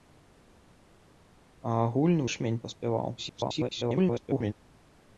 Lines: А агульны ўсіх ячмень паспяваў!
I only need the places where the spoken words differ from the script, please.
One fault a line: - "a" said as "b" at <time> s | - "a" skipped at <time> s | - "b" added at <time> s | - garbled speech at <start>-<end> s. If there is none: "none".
- "ўсіх" skipped at 2.2 s
- garbled speech at 3.2-4.5 s